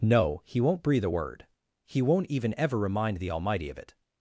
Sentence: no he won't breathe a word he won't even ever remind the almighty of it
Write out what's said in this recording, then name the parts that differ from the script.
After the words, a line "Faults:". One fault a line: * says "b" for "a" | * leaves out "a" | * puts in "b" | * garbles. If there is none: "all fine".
no he won't breathe a word he won't even ever remind the almighty of it
Faults:
all fine